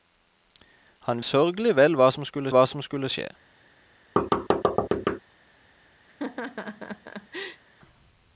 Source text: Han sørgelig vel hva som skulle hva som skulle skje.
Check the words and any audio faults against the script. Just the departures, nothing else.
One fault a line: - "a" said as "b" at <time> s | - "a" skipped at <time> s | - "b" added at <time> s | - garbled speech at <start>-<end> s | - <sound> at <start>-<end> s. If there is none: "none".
- thud at 4.2-5.2 s
- laugh at 6.1-7.6 s